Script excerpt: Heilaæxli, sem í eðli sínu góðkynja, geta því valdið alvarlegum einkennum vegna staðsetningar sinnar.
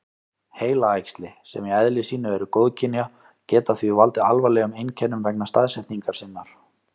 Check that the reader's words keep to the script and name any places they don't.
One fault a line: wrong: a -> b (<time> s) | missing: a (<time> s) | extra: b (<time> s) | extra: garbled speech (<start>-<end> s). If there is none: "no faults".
extra: eru (2.4 s)